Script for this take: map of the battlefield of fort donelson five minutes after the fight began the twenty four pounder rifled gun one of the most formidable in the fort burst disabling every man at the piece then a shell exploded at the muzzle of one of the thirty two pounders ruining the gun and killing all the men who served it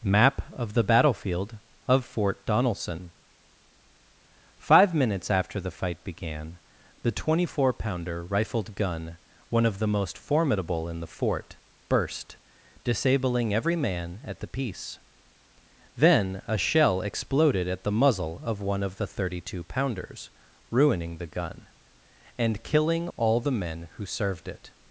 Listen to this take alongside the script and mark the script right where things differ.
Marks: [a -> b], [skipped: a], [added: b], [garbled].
map of the battlefield of fort donelson five minutes after the fight began the twenty four pounder rifled gun one of the most formidable in the fort burst disabling every man at the piece then a shell exploded at the muzzle of one of the thirty two pounders ruining the gun and killing all the men who served it